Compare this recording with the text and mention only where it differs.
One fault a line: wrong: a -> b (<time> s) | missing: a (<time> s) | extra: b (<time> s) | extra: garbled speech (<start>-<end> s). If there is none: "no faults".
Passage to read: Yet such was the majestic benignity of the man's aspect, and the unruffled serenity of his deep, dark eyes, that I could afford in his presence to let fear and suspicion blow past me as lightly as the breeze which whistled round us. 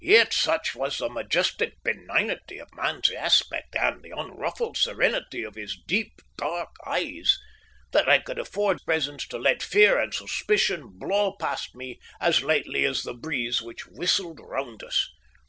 missing: the (2.7 s)
missing: in his (8.8 s)